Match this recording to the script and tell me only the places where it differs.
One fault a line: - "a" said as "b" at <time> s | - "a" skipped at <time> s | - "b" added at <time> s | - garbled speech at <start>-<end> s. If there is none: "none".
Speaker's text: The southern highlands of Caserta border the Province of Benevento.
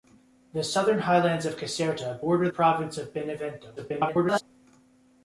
- "the" skipped at 2.5 s
- garbled speech at 3.8-4.4 s